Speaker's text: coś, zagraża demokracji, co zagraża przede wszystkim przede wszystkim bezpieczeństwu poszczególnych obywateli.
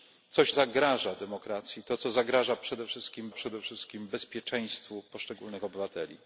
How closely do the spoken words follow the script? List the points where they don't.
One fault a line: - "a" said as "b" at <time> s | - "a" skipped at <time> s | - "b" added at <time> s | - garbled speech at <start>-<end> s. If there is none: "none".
none